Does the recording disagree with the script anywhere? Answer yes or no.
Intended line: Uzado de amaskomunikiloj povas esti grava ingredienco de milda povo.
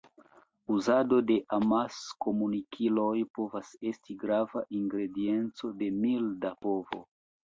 no